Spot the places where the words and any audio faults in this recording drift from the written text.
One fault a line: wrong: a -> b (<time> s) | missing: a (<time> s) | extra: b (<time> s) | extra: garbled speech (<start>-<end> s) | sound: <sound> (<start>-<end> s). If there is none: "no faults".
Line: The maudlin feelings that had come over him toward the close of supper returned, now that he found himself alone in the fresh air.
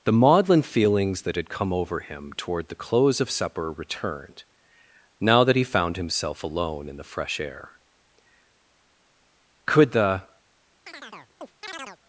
extra: Could the (9.7 s)
sound: chirp (10.9-12.0 s)